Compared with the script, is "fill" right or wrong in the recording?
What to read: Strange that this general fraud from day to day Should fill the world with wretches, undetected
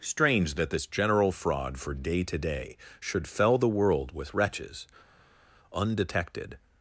wrong